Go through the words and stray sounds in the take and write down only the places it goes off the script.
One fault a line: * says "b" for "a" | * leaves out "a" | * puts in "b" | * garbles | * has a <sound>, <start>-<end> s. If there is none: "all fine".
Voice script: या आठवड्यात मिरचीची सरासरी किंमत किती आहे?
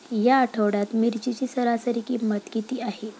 all fine